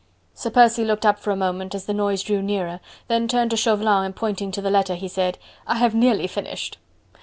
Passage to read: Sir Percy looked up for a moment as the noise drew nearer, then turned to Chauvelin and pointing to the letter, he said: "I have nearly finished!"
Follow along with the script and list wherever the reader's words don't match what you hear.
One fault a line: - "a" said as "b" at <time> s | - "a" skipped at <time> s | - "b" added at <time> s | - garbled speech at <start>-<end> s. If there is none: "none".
none